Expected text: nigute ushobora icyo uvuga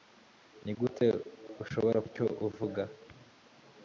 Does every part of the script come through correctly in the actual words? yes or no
yes